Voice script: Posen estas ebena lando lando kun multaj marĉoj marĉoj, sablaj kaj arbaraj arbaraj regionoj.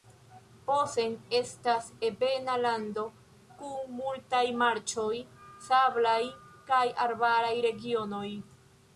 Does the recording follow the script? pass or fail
fail